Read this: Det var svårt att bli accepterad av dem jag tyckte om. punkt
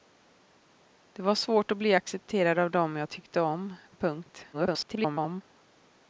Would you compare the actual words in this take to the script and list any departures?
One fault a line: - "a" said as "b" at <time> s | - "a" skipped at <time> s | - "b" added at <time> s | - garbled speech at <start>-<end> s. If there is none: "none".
- garbled speech at 4.5-5.4 s